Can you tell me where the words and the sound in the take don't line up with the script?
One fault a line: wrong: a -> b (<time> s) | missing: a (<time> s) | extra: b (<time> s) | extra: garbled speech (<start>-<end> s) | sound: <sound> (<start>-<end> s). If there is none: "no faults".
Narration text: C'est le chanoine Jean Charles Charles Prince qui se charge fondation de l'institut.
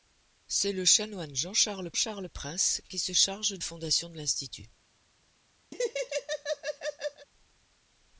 sound: laugh (5.7-7.3 s)